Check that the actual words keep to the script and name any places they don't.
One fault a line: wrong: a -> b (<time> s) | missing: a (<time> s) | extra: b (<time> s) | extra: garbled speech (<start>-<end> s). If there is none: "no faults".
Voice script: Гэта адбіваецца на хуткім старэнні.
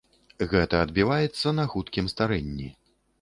no faults